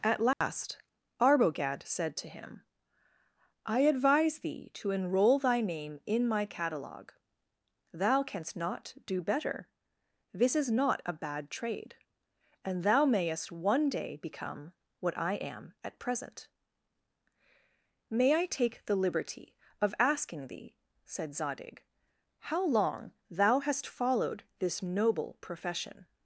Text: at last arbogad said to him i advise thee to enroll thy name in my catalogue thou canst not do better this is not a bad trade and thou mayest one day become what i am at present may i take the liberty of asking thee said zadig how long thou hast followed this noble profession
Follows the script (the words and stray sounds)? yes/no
no